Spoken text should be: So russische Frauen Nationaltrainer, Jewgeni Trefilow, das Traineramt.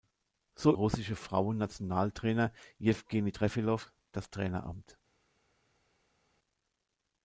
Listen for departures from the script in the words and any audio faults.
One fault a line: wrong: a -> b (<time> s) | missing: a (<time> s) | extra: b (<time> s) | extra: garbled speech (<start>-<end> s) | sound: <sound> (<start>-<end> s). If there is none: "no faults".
no faults